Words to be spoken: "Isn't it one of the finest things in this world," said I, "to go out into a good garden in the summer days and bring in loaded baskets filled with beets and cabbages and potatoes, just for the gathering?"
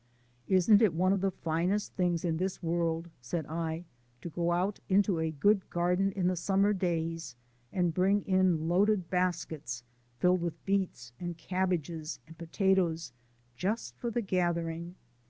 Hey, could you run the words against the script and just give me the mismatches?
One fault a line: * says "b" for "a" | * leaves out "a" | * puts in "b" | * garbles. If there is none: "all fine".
all fine